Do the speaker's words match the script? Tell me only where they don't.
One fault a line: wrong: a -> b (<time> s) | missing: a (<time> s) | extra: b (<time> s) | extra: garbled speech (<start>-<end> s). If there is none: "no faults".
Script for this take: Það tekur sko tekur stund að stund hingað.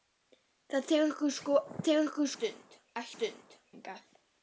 no faults